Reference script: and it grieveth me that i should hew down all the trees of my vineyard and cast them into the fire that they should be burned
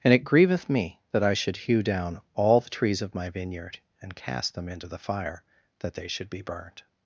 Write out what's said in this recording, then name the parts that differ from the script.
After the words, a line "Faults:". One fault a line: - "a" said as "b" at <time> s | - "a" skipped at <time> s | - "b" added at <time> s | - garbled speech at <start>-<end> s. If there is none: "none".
and it grieveth me that i should hew down all the trees of my vineyard and cast them into the fire that they should be burned
Faults:
none